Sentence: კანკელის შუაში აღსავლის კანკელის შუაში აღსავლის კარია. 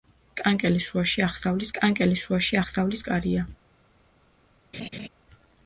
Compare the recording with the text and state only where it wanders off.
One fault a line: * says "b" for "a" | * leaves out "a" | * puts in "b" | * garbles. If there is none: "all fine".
all fine